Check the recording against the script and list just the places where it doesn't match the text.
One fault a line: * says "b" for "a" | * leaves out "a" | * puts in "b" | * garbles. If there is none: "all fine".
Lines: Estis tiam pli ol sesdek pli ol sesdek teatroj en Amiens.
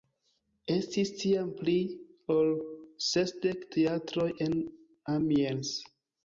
* leaves out "pli ol sesdek"